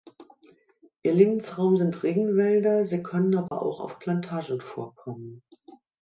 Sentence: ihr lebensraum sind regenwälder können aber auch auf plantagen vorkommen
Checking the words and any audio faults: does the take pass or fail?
fail